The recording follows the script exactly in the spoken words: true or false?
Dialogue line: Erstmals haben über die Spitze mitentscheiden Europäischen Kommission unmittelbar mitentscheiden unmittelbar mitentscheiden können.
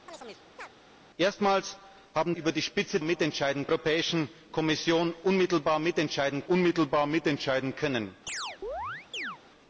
true